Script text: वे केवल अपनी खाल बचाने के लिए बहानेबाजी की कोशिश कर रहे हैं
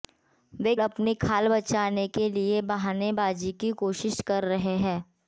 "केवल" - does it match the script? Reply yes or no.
no